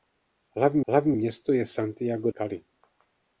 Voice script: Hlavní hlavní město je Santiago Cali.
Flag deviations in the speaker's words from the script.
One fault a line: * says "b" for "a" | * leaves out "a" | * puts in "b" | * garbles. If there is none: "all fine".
all fine